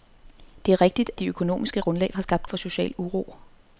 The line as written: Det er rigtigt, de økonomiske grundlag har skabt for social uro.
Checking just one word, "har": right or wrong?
right